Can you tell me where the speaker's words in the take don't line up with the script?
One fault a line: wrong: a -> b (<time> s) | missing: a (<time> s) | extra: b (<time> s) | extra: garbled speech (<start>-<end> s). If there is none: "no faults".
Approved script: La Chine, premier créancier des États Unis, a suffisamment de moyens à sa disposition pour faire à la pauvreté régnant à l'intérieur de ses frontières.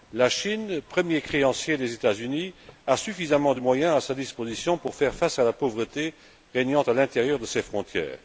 extra: face (5.1 s)